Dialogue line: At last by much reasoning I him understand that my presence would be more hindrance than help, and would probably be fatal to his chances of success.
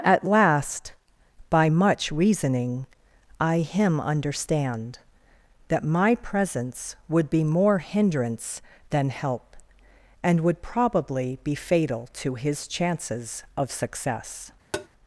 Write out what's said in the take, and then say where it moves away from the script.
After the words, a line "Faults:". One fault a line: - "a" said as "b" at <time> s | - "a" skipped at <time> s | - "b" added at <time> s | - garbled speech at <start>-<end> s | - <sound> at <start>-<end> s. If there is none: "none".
At last by much reasoning I him understand that my presence would be more hindrance than help, and would probably be fatal to his chances of success.
Faults:
- tap at 14.7-14.9 s